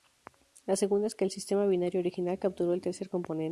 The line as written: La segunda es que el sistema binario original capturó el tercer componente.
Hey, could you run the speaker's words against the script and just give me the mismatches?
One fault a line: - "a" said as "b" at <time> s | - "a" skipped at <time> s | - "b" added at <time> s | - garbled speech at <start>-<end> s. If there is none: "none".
none